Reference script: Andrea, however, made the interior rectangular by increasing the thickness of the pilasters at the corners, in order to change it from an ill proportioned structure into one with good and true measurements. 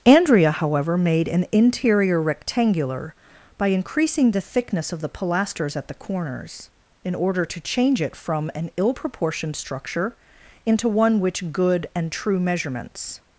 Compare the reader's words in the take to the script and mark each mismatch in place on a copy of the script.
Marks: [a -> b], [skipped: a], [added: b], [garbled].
Andrea, however, made [the -> an] interior rectangular by increasing the thickness of the pilasters at the corners, in order to change it from an ill proportioned structure into one [with -> which] good and true measurements.